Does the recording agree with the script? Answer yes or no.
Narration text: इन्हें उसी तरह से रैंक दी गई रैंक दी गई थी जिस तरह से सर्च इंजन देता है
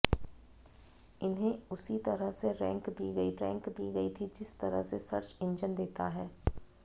yes